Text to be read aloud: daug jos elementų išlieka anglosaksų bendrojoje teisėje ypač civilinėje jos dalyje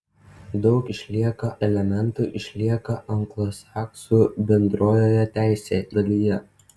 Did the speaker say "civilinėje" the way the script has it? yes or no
no